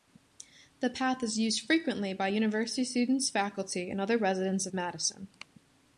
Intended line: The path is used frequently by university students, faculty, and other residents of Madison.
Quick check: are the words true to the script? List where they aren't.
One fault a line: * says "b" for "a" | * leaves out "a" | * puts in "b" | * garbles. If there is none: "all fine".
all fine